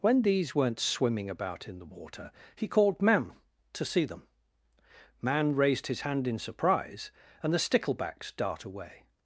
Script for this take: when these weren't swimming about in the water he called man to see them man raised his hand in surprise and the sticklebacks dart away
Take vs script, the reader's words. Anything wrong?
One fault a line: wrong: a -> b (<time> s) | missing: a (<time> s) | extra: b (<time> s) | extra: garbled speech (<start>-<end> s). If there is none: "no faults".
no faults